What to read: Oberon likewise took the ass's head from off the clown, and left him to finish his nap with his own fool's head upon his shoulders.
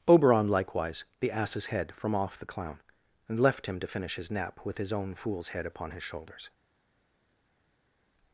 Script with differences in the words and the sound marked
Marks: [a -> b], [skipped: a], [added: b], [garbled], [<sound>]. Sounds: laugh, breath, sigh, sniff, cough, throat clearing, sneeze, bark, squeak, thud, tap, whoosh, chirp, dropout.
Oberon likewise [skipped: took] the ass's head from off the clown, and left him to finish his nap with his own fool's head upon his shoulders.